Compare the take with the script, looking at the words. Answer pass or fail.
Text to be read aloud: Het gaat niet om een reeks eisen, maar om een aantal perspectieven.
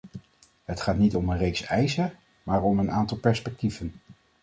pass